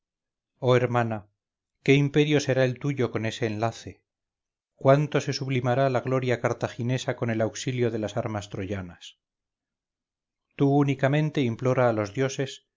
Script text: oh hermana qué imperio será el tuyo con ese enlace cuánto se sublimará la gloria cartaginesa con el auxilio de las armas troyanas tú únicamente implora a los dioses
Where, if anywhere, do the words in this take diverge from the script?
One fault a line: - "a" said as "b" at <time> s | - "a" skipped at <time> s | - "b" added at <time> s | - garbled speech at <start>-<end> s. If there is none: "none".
none